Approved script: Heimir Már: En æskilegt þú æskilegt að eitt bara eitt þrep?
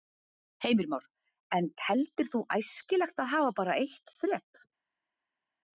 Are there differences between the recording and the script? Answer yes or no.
yes